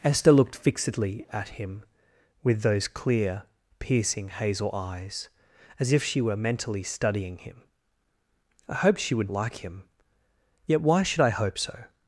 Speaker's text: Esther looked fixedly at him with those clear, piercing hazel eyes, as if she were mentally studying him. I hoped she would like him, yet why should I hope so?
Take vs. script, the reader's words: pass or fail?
pass